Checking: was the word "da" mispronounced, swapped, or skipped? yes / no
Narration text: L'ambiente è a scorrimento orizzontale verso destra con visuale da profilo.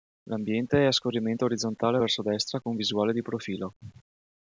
yes